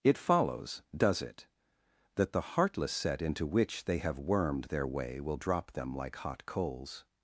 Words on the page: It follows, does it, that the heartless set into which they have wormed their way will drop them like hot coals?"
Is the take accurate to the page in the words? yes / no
yes